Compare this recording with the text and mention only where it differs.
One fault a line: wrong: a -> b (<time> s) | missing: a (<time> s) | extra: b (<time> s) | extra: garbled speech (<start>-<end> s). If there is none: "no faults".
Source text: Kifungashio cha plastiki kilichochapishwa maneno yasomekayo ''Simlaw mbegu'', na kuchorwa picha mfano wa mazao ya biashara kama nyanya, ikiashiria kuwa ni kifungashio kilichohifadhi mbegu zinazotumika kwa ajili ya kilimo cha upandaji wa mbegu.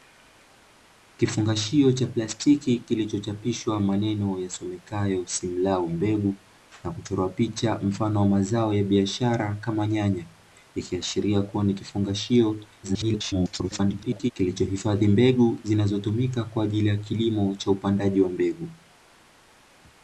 extra: garbled speech (12.8-14.3 s)